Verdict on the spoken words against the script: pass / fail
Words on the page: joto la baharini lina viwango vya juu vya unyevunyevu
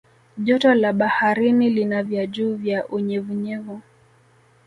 fail